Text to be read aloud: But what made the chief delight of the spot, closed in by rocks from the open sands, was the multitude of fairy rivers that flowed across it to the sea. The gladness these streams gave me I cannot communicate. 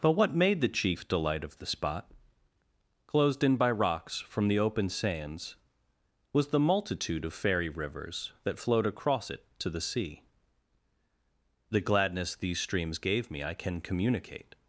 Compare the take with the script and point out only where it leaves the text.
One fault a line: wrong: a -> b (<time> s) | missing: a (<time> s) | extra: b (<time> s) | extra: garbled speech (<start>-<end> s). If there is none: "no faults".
wrong: cannot -> can (13.5 s)